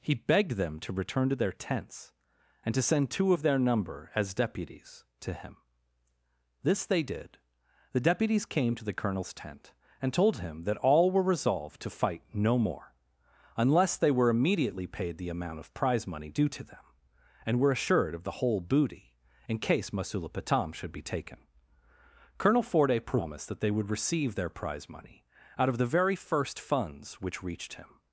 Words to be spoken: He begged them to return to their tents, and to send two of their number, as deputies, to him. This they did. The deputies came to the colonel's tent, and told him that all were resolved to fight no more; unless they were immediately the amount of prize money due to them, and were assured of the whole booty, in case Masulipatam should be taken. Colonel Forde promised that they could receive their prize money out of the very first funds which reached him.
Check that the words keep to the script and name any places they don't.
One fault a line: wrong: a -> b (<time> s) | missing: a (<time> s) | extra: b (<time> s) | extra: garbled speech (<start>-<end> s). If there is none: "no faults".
extra: paid (14.9 s)
wrong: could -> would (23.7 s)